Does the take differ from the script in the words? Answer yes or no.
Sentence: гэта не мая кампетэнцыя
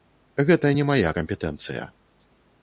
no